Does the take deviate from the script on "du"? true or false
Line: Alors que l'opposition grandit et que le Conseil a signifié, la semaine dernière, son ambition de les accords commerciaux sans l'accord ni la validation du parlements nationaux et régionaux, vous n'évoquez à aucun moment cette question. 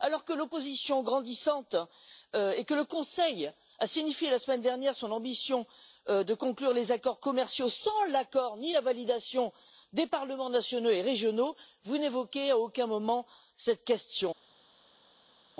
true